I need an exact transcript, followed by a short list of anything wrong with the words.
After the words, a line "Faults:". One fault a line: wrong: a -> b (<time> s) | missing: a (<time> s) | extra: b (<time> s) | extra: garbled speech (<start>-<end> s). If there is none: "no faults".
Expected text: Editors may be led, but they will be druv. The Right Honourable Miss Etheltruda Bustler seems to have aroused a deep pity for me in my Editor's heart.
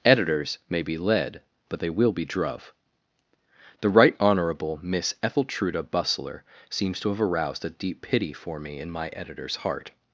Editors may be led, but they will be druv. The Right Honourable Miss Etheltruda Bustler seems to have aroused a deep pity for me in my Editor's heart.
Faults:
no faults